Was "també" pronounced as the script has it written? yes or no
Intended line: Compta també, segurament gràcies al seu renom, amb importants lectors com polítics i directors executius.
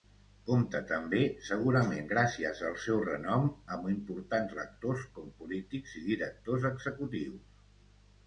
yes